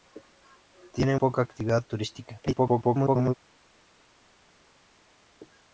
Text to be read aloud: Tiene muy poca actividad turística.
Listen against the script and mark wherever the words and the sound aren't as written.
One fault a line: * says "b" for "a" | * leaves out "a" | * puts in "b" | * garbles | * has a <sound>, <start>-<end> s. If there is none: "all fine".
* leaves out "muy"
* garbles